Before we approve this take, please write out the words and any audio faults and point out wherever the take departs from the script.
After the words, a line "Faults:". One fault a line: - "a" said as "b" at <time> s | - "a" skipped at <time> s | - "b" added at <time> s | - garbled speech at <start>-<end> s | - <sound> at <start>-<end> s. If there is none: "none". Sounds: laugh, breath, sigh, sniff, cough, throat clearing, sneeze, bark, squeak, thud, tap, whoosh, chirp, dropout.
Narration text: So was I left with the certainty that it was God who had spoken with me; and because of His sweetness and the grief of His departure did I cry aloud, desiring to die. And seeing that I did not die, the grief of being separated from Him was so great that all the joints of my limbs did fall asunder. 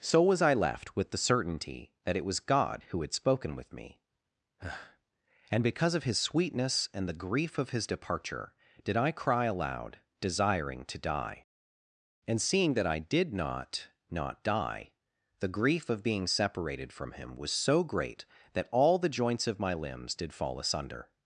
So was I left with the certainty that it was God who had spoken with me; and because of His sweetness and the grief of His departure did I cry aloud, desiring to die. And seeing that I did not not die, the grief of being separated from Him was so great that all the joints of my limbs did fall asunder.
Faults:
- "not" added at 14.1 s